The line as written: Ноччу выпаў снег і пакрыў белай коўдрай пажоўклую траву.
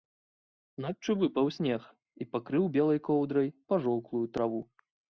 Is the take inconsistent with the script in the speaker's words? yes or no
no